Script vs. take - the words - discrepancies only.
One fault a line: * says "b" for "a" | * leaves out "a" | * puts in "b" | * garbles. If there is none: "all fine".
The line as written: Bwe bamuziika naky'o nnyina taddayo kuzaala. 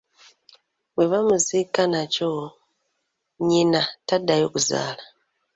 all fine